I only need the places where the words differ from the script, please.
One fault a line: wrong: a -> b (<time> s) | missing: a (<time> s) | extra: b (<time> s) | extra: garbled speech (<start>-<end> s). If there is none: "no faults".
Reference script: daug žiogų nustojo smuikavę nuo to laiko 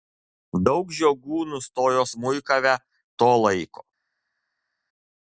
missing: nuo (2.8 s)